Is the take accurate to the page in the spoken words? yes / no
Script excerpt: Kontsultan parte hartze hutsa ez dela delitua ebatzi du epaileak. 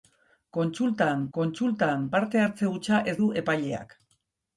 no